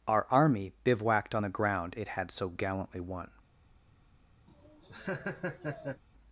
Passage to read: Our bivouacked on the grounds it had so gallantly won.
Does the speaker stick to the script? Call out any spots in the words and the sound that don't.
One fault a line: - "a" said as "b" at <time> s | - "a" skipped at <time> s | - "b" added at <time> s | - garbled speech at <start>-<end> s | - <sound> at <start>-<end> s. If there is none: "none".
- "army" added at 0.3 s
- "grounds" said as "ground" at 1.5 s
- laugh at 4.5-6.0 s